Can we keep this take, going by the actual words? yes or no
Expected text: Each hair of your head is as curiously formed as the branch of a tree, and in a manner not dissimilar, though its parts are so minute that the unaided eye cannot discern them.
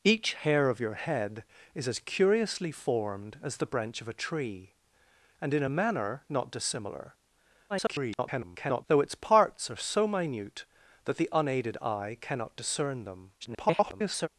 no